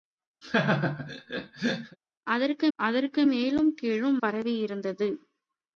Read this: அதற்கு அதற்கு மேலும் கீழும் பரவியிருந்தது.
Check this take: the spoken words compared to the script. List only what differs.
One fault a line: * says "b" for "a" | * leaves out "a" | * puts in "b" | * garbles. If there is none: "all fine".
all fine